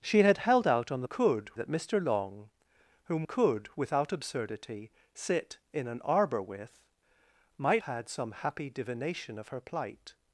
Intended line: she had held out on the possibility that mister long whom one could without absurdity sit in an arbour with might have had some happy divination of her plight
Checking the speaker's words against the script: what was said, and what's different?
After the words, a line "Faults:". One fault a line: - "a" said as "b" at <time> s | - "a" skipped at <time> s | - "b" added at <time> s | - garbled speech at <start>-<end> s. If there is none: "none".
she had held out on the could that mister long whom could without absurdity sit in an arbour with might had some happy divination of her plight
Faults:
- "possibility" said as "could" at 1.0 s
- "one" skipped at 3.2 s
- "have" skipped at 7.8 s